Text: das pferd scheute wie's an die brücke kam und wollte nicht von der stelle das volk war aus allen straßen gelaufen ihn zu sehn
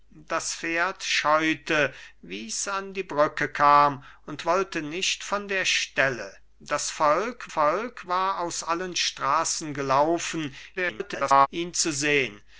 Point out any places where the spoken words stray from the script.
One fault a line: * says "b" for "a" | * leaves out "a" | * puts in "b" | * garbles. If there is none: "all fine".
* puts in "volk"
* garbles